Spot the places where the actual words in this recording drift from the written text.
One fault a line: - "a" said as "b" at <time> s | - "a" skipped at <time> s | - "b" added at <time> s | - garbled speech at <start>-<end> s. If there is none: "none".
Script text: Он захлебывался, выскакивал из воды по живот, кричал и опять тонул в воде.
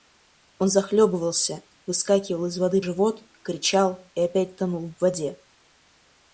- "по" skipped at 2.8 s